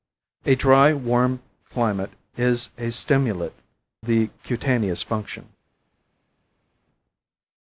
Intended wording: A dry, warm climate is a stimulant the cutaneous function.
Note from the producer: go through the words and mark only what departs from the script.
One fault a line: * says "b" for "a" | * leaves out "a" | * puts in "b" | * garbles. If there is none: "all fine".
all fine